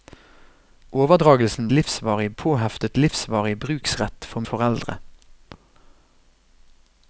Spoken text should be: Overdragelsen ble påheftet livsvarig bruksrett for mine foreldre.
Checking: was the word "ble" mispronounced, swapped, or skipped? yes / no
yes